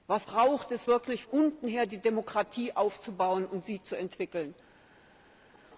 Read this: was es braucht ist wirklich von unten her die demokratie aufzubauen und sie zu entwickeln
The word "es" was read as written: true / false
false